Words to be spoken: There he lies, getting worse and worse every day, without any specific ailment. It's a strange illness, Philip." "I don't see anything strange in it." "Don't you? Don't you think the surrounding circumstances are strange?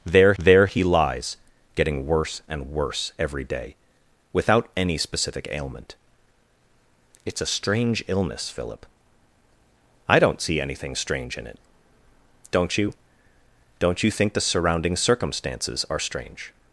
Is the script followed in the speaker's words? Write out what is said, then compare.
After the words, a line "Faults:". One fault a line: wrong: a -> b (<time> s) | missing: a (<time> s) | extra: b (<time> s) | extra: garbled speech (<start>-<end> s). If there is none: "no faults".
There there he lies, getting worse and worse every day, without any specific ailment. It's a strange illness, Philip." "I don't see anything strange in it." "Don't you? Don't you think the surrounding circumstances are strange?
Faults:
extra: there (0.4 s)